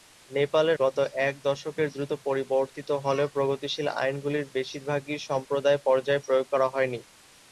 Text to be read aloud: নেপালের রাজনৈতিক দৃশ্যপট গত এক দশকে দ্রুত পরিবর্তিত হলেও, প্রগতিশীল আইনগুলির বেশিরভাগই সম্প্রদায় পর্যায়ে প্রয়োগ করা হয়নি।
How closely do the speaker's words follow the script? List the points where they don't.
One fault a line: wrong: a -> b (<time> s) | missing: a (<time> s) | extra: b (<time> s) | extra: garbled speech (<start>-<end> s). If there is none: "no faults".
missing: রাজনৈতিক দৃশ্যপট (0.8 s)